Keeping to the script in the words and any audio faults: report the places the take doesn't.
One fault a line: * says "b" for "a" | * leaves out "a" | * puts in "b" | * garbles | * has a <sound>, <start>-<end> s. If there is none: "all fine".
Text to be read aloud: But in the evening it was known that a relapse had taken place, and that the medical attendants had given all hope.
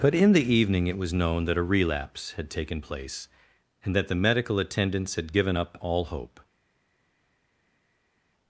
* puts in "up"